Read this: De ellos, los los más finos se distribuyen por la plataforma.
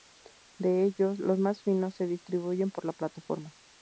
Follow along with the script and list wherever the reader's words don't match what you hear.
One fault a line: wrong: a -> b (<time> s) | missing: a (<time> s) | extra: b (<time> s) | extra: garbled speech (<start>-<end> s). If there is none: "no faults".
missing: los (1.4 s)